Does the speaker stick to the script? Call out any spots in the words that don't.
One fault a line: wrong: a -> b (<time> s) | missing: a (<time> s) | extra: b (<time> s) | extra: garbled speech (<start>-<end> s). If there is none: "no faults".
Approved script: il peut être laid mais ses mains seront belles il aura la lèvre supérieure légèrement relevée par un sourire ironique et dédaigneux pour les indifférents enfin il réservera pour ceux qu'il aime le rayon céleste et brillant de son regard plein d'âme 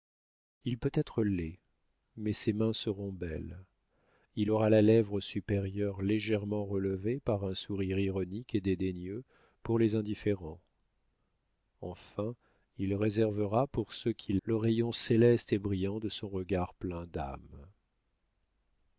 missing: aime (14.4 s)